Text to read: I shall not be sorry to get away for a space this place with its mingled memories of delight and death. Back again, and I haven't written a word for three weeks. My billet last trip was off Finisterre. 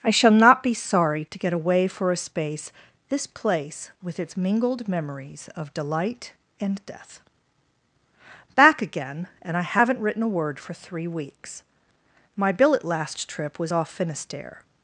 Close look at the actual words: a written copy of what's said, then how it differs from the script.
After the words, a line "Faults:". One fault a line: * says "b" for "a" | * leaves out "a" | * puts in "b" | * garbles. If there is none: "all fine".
I shall not be sorry to get away for a space this place with its mingled memories of delight and death. Back again, and I haven't written a word for three weeks. My billet last trip was off Finisterre.
Faults:
all fine